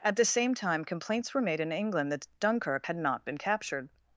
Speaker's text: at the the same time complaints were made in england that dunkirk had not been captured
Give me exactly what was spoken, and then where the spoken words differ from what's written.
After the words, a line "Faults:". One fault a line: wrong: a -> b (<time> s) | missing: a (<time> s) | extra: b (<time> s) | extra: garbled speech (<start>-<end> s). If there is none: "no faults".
at the same time complaints were made in england that dunkirk had not been captured
Faults:
missing: the (0.2 s)